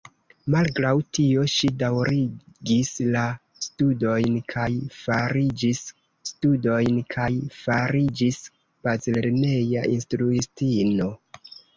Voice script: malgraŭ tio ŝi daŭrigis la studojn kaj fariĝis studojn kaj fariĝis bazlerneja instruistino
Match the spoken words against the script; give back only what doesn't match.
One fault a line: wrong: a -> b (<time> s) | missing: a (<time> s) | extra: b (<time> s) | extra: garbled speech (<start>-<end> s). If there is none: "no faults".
no faults